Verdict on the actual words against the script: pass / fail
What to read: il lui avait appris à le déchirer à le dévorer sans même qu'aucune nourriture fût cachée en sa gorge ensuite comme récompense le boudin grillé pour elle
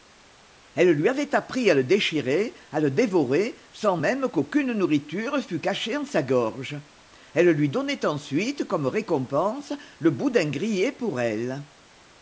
fail